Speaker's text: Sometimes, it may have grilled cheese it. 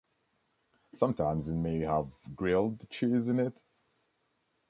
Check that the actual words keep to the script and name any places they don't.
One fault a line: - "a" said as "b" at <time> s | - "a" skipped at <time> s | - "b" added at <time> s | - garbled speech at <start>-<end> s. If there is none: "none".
- "in" added at 3.3 s